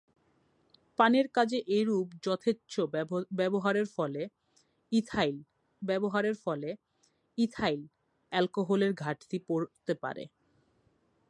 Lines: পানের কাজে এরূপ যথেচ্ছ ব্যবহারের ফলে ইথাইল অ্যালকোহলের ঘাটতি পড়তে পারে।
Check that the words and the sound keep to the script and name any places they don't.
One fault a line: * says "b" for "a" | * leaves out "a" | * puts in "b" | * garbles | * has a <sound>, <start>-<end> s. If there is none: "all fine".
* puts in "ব্যবহারের ফলে ইথাইল"